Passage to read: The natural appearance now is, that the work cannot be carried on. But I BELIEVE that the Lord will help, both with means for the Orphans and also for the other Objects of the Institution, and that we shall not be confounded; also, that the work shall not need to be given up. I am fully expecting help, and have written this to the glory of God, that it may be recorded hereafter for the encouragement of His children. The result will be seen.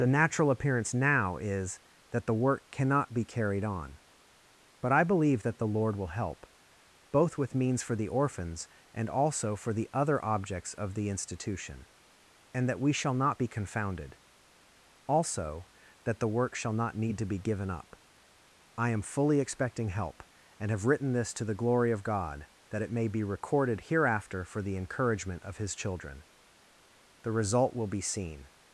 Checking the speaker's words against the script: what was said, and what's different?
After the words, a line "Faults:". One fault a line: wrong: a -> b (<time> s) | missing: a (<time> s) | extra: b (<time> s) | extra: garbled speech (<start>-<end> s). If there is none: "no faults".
The natural appearance now is, that the work cannot be carried on. But I BELIEVE that the Lord will help, both with means for the Orphans and also for the other Objects of the Institution, and that we shall not be confounded; also, that the work shall not need to be given up. I am fully expecting help, and have written this to the glory of God, that it may be recorded hereafter for the encouragement of His children. The result will be seen.
Faults:
no faults